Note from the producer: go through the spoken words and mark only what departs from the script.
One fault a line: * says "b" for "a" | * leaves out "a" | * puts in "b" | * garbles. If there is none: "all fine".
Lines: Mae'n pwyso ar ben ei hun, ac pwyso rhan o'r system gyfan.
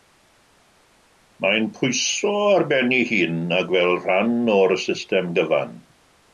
* says "fel" for "pwyso"